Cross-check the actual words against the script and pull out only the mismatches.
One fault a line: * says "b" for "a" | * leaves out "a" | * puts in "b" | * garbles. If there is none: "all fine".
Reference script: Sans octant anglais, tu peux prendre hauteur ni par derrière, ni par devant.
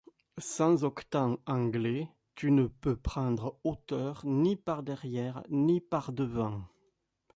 * puts in "ne"